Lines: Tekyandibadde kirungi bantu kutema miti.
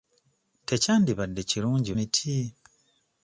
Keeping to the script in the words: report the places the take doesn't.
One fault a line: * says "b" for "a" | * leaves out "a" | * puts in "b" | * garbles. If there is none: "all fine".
* leaves out "bantu kutema"